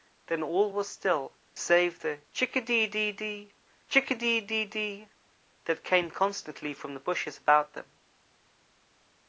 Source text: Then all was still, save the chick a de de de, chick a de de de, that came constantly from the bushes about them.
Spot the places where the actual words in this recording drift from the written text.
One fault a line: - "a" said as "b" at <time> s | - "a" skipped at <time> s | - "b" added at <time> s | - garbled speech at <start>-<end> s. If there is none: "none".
none